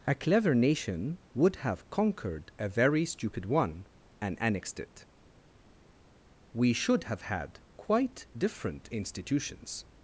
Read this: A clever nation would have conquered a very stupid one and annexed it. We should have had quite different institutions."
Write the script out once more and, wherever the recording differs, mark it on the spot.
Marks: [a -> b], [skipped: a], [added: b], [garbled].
A clever nation would have conquered a very stupid one and annexed it. We should have had quite different institutions."